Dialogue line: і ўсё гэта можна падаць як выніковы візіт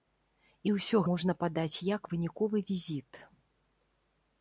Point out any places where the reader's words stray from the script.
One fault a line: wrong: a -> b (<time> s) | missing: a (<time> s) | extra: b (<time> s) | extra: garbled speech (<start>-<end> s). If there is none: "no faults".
missing: гэта (1.0 s)